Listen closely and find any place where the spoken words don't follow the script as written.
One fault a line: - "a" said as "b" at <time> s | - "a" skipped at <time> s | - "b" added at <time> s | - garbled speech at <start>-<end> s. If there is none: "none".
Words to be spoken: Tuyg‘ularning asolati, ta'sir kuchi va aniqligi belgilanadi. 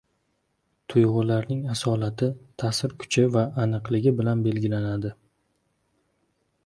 - "bilan" added at 4.2 s